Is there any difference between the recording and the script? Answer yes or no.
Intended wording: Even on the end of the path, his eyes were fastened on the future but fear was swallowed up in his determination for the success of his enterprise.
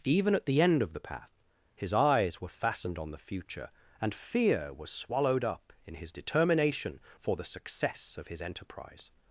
yes